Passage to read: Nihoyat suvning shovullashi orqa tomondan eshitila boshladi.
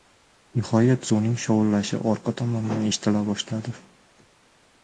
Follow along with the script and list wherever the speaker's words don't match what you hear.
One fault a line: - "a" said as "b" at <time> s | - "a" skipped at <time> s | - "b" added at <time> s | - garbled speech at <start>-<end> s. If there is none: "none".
none